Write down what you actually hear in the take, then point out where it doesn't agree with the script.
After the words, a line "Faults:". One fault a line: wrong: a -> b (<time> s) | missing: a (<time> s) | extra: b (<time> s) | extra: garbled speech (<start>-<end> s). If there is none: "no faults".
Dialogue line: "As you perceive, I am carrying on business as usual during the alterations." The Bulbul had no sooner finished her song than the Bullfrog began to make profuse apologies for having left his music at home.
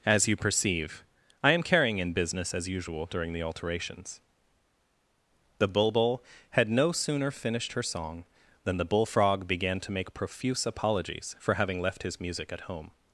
"As you perceive, I am carrying in business as usual during the alterations." The Bulbul had no sooner finished her song than the Bullfrog began to make profuse apologies for having left his music at home.
Faults:
wrong: on -> in (2.0 s)